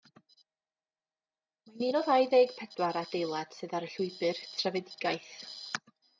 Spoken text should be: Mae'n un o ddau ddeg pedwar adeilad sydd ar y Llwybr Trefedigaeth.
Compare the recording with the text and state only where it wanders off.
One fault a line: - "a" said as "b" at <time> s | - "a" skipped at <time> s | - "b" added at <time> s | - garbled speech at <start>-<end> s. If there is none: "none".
none